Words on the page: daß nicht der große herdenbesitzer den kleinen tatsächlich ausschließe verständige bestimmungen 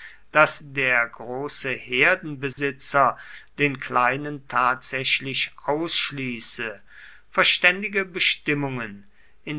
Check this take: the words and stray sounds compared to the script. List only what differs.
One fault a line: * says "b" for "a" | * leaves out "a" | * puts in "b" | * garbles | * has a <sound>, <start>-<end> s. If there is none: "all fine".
* leaves out "nicht"
* has a dropout, 2.5-2.6 s